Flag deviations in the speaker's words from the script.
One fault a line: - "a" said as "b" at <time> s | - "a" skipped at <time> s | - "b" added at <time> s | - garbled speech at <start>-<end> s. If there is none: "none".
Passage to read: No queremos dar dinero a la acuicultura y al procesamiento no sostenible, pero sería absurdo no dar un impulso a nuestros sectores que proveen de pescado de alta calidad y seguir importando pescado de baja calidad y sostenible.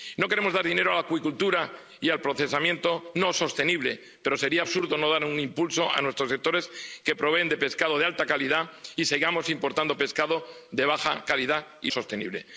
none